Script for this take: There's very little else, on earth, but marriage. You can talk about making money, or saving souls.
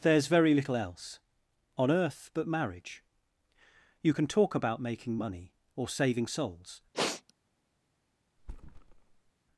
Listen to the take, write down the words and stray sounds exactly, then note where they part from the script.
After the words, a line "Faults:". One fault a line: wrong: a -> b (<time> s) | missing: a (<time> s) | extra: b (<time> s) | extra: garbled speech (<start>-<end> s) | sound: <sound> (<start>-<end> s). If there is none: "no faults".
There's very little else, on earth, but marriage. You can talk about making money, or saving souls.
Faults:
sound: sniff (6.9-7.3 s)
sound: thud (8.4-9.3 s)